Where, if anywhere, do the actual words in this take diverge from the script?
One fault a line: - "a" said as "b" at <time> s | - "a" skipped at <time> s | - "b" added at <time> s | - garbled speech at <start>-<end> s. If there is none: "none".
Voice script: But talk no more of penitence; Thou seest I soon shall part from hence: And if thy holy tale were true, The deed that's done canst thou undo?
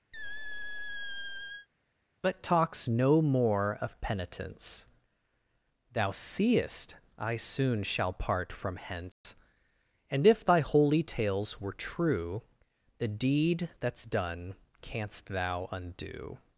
- "talk" said as "talks" at 2.4 s
- "tale" said as "tales" at 11.0 s